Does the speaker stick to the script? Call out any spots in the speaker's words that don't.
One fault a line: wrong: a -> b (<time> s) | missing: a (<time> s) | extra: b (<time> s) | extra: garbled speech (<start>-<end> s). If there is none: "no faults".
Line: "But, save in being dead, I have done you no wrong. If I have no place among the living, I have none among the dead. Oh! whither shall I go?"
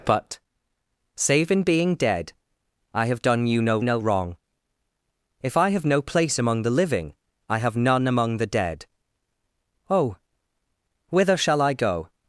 extra: no (3.8 s)